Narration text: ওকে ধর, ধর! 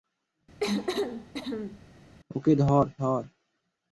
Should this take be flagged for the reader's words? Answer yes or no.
no